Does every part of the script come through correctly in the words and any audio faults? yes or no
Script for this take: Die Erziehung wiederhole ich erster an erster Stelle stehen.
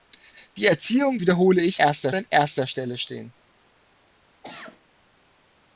no